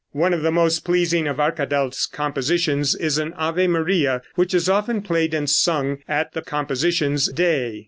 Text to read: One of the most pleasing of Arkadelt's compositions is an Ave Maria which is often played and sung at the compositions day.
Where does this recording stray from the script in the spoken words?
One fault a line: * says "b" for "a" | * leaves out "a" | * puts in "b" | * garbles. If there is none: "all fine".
all fine